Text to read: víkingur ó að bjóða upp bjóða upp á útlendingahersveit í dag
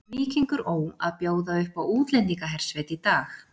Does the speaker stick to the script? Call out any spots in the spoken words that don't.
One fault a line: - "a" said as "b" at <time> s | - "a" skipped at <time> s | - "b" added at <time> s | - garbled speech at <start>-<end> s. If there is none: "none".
- "bjóða upp" skipped at 1.8 s